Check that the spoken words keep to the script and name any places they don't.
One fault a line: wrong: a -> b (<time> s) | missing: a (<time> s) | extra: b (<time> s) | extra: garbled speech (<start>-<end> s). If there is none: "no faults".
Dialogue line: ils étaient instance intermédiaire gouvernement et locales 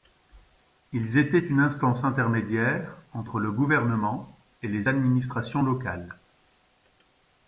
extra: une (1.4 s)
extra: entre le (3.1 s)
extra: les administrations (4.7 s)